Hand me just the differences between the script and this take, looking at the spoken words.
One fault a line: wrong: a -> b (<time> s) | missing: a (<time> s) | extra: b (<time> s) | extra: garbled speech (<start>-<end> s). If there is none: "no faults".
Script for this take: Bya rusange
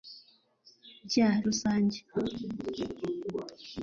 no faults